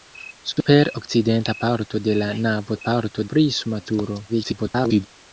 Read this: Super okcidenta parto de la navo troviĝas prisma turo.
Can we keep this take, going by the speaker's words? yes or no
no